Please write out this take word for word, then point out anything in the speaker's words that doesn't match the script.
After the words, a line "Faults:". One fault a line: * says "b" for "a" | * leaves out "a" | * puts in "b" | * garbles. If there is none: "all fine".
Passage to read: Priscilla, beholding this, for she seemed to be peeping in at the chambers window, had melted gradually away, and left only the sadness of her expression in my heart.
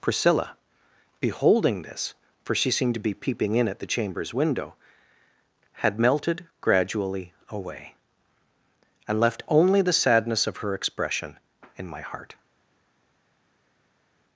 Priscilla, beholding this, for she seemed to be peeping in at the chambers window, had melted gradually away, and left only the sadness of her expression in my heart.
Faults:
all fine